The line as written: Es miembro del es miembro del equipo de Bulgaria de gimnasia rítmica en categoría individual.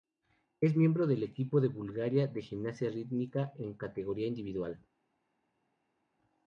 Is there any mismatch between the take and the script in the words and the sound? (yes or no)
yes